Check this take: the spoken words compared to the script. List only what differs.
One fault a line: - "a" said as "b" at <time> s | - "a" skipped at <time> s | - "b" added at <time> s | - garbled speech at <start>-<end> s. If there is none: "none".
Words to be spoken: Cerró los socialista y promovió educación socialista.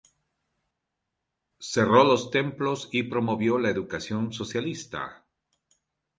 - "socialista" said as "templos" at 2.3 s
- "la" added at 3.6 s